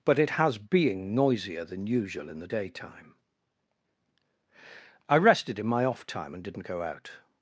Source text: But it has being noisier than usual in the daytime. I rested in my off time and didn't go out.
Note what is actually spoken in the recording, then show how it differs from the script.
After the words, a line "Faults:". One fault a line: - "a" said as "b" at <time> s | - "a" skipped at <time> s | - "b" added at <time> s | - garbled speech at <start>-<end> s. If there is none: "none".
But it has being noisier than usual in the daytime. I rested in my off time and didn't go out.
Faults:
none